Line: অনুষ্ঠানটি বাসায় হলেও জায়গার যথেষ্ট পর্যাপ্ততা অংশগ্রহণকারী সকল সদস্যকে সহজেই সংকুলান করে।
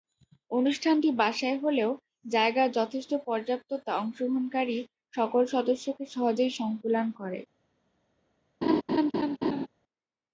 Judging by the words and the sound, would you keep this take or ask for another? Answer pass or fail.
fail